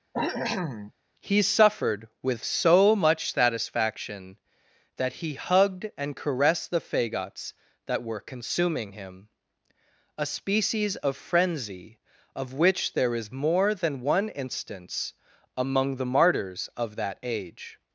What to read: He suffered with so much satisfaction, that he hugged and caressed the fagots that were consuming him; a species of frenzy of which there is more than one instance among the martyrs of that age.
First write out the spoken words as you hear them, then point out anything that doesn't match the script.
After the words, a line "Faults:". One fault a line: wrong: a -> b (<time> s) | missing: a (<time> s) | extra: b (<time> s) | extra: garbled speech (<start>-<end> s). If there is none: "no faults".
He suffered with so much satisfaction, that he hugged and caressed the fagots that were consuming him; a species of frenzy of which there is more than one instance among the martyrs of that age.
Faults:
no faults